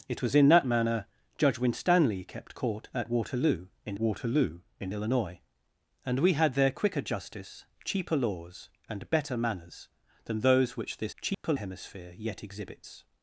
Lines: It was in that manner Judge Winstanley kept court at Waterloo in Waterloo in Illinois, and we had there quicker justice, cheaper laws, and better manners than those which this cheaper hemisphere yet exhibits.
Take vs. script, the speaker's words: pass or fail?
pass